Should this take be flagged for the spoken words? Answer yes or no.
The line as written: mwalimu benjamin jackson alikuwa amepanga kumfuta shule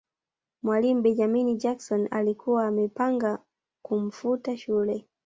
no